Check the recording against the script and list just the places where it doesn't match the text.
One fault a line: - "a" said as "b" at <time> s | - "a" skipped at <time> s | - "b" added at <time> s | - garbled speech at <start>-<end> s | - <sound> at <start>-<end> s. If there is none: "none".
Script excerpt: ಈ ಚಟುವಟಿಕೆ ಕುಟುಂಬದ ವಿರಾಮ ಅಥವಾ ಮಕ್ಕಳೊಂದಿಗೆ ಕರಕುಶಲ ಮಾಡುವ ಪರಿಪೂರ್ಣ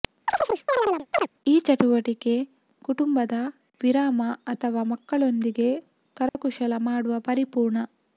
- chirp at 0.3-1.3 s
- dropout at 6.3-6.4 s